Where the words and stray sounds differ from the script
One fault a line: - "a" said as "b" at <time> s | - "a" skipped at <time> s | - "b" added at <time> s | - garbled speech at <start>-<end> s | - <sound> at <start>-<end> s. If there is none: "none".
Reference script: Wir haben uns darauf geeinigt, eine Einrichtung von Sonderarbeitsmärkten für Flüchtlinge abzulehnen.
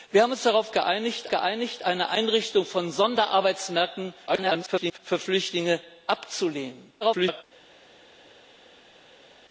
- "geeinigt" added at 1.3 s
- garbled speech at 4.3-5.0 s
- garbled speech at 7.0-7.4 s